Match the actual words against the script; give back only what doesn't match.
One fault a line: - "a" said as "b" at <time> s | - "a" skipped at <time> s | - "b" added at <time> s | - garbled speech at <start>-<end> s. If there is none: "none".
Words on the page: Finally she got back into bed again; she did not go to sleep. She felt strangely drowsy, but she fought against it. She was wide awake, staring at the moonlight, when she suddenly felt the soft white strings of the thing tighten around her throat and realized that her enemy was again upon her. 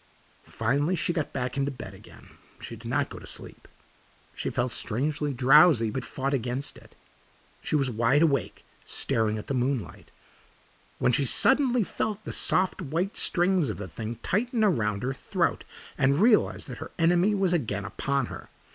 - "she" skipped at 6.1 s